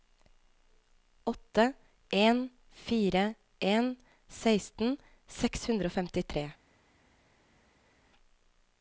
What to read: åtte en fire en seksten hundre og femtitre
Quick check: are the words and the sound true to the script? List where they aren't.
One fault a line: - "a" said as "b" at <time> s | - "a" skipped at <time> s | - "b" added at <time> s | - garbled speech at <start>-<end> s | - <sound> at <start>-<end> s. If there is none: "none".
- "seks" added at 5.4 s